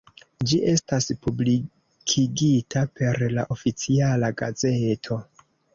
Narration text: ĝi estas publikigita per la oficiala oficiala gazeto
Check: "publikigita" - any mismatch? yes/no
no